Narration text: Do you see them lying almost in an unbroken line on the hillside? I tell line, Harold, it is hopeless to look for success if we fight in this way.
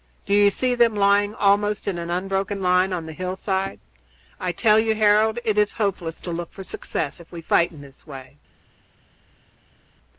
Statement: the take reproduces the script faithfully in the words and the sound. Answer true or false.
false